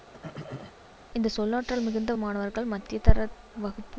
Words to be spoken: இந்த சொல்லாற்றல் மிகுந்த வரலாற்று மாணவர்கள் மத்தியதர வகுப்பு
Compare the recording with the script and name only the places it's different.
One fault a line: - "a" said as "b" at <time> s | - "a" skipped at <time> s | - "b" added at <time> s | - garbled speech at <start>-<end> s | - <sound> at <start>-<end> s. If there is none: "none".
- throat clearing at 0.1-0.8 s
- "வரலாற்று" skipped at 2.1 s